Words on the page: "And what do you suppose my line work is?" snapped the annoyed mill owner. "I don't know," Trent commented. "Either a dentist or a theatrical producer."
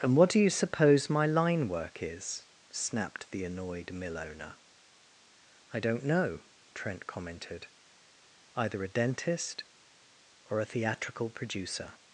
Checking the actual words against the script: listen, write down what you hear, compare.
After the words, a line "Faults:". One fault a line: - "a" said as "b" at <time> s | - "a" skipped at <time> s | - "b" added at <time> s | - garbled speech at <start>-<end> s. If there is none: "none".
"And what do you suppose my line work is?" snapped the annoyed mill owner. "I don't know," Trent commented. "Either a dentist or a theatrical producer."
Faults:
none